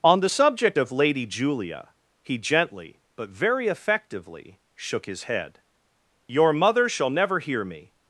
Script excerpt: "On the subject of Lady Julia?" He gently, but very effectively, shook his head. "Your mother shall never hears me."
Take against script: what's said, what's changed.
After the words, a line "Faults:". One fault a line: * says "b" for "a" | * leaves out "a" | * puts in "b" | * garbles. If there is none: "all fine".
"On the subject of Lady Julia?" He gently, but very effectively, shook his head. "Your mother shall never hear me."
Faults:
* says "hear" for "hears"